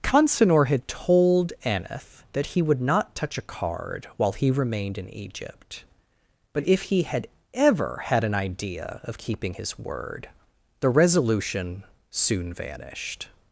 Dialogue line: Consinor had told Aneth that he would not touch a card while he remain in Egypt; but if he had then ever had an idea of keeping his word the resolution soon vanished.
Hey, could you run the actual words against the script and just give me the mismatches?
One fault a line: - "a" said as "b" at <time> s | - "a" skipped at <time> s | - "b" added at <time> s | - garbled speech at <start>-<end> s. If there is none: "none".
- "remain" said as "remained" at 4.5 s
- "then" skipped at 7.3 s